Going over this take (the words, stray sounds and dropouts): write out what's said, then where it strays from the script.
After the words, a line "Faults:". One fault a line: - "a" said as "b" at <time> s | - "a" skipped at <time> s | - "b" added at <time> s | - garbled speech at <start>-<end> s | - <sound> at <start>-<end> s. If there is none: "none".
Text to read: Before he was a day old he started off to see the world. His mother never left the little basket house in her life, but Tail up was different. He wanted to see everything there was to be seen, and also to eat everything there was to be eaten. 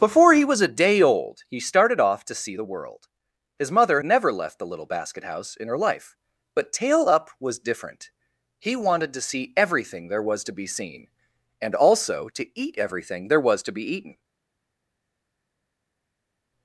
Before he was a day old he started off to see the world. His mother never left the little basket house in her life, but Tail up was different. He wanted to see everything there was to be seen, and also to eat everything there was to be eaten.
Faults:
none